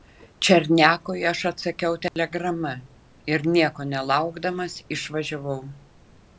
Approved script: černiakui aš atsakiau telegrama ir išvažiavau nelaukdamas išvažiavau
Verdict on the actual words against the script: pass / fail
fail